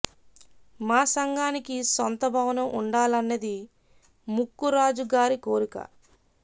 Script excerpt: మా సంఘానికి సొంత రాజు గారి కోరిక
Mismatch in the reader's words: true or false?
true